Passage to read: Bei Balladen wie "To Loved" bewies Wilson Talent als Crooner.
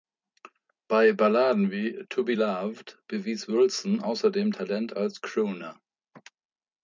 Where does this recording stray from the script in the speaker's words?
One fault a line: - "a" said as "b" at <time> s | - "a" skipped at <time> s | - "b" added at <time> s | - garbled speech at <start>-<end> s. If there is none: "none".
- "Be" added at 2.2 s
- "außerdem" added at 4.0 s